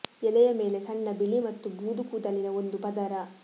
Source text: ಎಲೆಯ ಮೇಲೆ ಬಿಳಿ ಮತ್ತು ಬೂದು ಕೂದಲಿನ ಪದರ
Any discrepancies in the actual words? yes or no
yes